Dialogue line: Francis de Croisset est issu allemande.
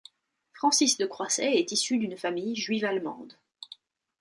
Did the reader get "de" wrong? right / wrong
right